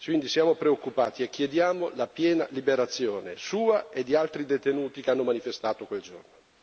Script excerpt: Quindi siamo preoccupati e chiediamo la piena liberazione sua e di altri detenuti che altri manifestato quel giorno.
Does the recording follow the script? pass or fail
fail